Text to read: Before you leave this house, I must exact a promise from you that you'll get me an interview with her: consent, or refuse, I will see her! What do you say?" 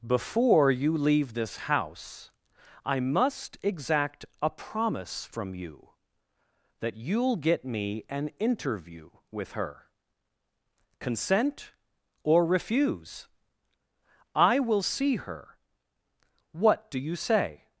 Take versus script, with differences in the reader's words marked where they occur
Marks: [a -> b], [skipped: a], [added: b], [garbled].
Before you leave this house, I must exact a promise from you that you'll get me an interview with her: consent, or refuse, I will see her! What do you say?"